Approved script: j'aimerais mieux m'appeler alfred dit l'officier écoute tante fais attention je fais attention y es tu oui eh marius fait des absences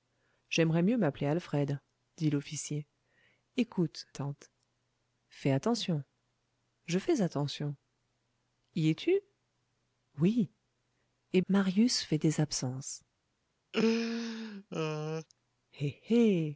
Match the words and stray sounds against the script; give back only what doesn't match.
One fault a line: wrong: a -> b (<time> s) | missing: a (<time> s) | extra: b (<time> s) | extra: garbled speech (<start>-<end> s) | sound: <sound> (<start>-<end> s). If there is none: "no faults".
sound: laugh (13.7-15.3 s)